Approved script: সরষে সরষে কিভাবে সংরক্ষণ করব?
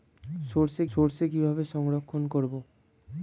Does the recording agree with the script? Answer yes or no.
yes